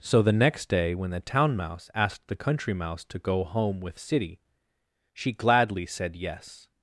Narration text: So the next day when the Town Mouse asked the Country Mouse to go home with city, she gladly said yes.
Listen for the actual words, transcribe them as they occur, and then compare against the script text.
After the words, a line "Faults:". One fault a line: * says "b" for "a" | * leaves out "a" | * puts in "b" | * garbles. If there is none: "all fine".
So the next day when the Town Mouse asked the Country Mouse to go home with city, she gladly said yes.
Faults:
all fine